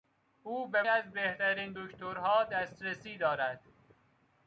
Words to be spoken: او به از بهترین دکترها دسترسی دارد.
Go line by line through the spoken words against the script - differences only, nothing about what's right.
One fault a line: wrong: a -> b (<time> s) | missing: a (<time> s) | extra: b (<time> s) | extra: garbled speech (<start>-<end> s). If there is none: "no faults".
no faults